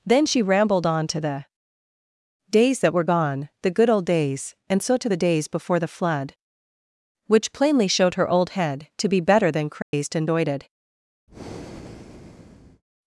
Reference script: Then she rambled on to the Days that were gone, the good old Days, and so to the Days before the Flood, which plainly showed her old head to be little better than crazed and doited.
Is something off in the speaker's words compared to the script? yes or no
yes